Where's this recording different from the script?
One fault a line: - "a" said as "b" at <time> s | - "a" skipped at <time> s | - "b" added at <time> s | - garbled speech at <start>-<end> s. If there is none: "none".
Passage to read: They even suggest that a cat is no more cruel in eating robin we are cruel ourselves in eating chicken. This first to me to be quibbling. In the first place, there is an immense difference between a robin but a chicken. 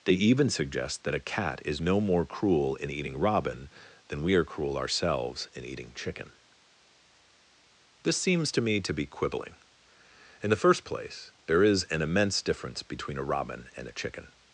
- "than" added at 4.1 s
- "first" said as "seems" at 8.2 s
- "but" said as "and" at 13.8 s